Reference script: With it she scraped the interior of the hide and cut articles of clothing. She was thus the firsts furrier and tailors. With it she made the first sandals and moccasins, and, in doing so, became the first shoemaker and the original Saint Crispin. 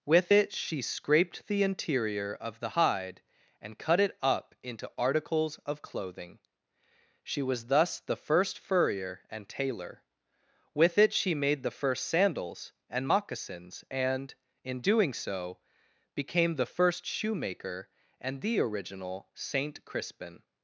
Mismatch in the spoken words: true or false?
true